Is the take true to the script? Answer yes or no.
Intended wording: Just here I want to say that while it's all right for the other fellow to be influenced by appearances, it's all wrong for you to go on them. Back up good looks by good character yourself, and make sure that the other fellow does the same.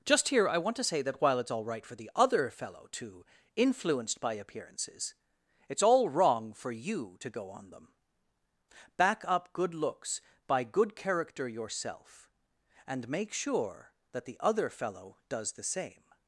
no